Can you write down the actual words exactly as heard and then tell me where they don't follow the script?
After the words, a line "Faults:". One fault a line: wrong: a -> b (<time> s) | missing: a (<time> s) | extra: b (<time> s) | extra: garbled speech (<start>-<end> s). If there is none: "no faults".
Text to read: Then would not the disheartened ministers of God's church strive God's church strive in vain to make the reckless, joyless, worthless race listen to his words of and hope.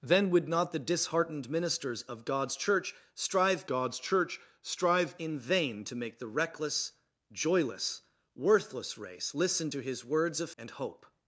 Then would not the disheartened ministers of God's church strive God's church strive in vain to make the reckless, joyless, worthless race listen to his words of and hope.
Faults:
no faults